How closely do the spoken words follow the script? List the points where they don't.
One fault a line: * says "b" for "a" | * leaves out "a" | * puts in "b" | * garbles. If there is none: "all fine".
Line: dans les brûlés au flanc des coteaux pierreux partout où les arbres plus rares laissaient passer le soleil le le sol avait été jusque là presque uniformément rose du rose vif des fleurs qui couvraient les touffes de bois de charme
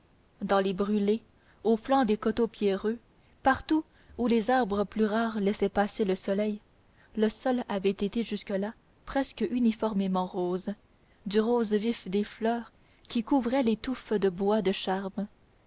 * leaves out "le"